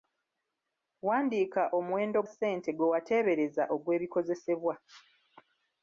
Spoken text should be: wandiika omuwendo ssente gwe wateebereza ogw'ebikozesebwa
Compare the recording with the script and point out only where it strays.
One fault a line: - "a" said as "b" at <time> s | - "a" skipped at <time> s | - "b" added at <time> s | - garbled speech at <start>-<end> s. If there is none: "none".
none